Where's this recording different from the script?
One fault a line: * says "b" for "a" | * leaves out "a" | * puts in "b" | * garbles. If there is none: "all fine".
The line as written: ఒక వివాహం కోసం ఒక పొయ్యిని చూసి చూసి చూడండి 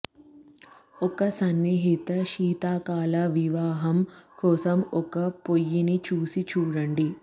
* puts in "సన్నిహిత శీతాకాల"
* leaves out "చూసి"